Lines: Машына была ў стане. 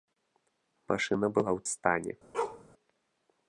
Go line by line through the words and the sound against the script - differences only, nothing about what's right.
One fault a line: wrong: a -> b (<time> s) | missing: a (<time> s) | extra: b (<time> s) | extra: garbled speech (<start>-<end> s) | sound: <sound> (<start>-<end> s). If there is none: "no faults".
sound: bark (2.3-2.6 s)